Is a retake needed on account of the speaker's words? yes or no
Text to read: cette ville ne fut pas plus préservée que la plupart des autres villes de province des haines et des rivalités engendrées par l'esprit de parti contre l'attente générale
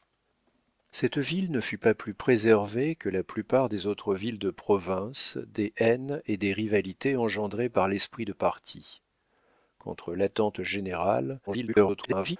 yes